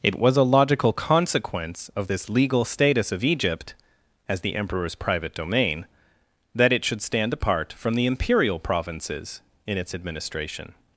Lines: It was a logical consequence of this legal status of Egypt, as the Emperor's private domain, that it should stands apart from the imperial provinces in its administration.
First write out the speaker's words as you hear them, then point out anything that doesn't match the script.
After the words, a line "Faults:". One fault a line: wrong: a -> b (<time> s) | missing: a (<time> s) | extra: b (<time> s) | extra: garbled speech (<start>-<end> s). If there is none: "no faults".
It was a logical consequence of this legal status of Egypt, as the Emperor's private domain, that it should stand apart from the imperial provinces in its administration.
Faults:
wrong: stands -> stand (7.0 s)